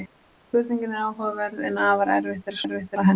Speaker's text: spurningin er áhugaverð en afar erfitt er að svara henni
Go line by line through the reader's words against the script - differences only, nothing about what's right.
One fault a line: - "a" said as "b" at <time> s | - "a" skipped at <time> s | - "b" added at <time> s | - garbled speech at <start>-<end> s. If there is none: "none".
- "svara" said as "erfitt" at 2.6 s